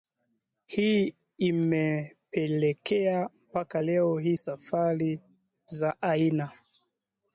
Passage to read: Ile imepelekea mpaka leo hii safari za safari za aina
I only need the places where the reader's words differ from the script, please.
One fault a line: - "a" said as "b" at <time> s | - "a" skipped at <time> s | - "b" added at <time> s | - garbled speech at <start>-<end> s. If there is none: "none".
- "Ile" said as "Hii" at 0.7 s
- "safari za" skipped at 6.0 s